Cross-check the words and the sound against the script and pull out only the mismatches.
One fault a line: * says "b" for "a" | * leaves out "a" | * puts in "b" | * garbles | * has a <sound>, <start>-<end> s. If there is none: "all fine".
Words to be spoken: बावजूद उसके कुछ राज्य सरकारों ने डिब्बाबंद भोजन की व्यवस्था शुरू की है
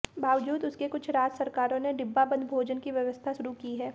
all fine